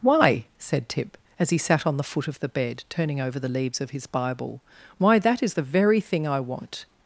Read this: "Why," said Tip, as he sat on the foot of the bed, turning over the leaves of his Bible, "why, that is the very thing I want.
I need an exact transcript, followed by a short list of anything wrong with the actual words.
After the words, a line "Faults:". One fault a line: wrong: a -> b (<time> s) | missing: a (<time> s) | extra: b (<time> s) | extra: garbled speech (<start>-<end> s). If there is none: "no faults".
"Why," said Tip, as he sat on the foot of the bed, turning over the leaves of his Bible, "why, that is the very thing I want.
Faults:
no faults